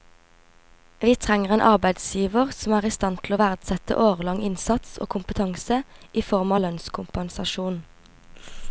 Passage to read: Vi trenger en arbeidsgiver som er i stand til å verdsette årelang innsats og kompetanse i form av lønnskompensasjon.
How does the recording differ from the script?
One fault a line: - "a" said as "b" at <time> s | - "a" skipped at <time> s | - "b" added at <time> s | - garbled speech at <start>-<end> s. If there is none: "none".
none